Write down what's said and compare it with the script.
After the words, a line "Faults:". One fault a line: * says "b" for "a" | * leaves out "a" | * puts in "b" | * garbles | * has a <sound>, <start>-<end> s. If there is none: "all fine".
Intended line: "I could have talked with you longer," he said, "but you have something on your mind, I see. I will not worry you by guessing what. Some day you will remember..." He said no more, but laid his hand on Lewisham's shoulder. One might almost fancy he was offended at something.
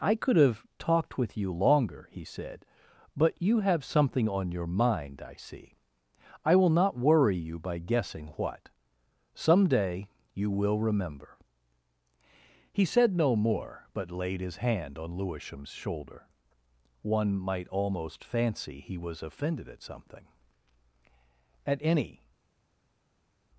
"I could have talked with you longer," he said, "but you have something on your mind, I see. I will not worry you by guessing what. Some day you will remember..." He said no more, but laid his hand on Lewisham's shoulder. One might almost fancy he was offended at something. At any
Faults:
* puts in "At any"